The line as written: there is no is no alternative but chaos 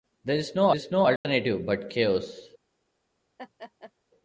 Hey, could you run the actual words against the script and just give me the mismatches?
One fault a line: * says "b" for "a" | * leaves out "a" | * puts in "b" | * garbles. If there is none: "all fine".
all fine